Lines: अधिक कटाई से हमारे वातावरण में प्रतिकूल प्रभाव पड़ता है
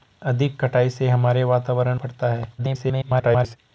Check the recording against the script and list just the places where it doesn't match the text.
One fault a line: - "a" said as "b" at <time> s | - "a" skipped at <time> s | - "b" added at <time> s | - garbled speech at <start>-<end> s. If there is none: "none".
- "में प्रतिकूल प्रभाव" skipped at 2.0 s
- garbled speech at 2.6-3.6 s